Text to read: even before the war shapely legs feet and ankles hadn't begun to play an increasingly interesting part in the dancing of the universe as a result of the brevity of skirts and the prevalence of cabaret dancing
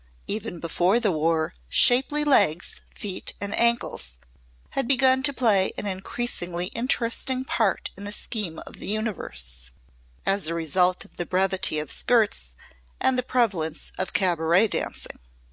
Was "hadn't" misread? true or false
true